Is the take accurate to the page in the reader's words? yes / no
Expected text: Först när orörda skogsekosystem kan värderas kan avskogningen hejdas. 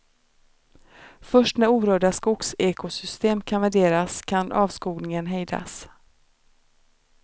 yes